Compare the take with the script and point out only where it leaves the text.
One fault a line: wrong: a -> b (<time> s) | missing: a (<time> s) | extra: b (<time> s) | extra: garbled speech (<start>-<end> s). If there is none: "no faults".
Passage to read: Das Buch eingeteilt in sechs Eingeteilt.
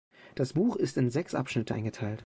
wrong: eingeteilt -> ist (0.8 s)
extra: Abschnitte (1.3 s)